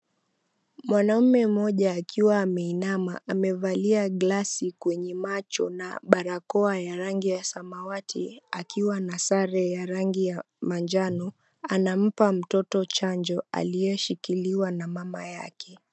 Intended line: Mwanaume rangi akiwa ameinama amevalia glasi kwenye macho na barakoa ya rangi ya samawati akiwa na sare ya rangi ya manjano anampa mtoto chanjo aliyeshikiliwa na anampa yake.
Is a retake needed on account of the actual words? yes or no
yes